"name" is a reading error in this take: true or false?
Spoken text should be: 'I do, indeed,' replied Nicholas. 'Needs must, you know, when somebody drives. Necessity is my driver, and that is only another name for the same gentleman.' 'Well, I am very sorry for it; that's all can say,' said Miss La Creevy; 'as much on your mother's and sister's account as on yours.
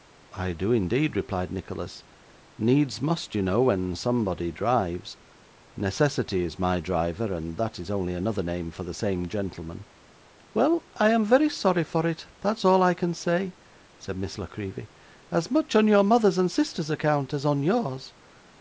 false